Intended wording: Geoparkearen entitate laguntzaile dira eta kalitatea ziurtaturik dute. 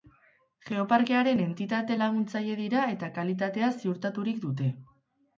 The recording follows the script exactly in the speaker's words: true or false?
true